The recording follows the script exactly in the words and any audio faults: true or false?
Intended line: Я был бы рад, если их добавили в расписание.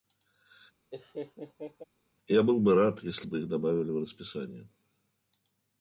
false